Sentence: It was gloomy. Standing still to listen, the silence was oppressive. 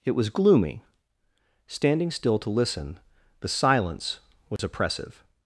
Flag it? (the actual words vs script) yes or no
no